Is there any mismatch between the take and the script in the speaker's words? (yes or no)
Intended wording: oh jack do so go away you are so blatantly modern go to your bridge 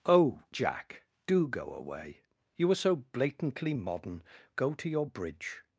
yes